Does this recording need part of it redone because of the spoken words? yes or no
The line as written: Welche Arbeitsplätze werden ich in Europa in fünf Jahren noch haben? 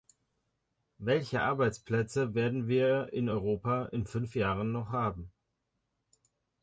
yes